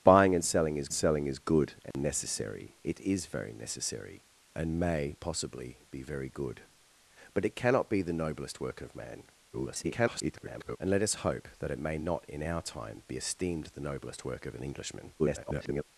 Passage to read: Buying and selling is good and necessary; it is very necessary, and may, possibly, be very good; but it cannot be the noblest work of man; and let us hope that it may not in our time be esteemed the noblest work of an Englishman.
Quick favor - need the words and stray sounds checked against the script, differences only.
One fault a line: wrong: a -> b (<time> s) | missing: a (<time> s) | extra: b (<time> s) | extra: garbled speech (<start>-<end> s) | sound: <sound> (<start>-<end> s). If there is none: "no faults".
extra: selling is (0.9 s)
sound: dropout (1.9-1.9 s)
extra: garbled speech (9.5-10.8 s)
extra: garbled speech (15.2-15.8 s)